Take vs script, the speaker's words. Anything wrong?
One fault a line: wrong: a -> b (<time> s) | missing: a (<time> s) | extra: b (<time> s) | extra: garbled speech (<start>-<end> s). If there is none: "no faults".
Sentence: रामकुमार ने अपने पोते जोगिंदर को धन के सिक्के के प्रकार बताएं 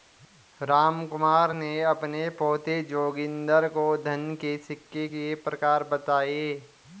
no faults